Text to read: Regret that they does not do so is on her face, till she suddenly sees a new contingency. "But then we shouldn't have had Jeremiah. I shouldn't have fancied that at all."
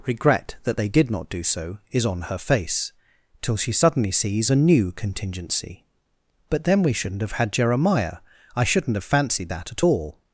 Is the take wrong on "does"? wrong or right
wrong